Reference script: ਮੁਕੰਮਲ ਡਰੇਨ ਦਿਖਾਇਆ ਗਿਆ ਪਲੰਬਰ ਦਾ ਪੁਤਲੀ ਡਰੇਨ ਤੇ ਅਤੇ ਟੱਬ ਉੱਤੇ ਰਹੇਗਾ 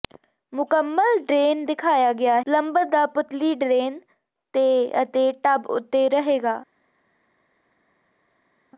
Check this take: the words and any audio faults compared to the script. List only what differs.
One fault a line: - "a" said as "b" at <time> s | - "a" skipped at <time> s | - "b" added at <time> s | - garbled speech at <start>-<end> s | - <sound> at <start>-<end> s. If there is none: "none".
none